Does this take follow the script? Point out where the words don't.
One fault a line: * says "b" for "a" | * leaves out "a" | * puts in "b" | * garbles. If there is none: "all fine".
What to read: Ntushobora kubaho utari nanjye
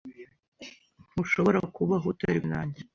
all fine